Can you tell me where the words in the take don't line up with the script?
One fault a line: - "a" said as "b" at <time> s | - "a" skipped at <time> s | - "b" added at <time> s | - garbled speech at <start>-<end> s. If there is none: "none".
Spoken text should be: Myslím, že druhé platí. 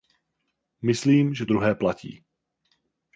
none